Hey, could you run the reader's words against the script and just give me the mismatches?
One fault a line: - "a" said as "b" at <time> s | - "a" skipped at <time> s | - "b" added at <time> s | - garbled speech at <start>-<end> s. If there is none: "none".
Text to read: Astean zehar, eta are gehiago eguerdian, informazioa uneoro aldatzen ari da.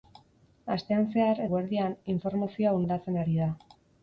- "eta are gehiago" skipped at 1.4 s
- "uneoro" skipped at 2.8 s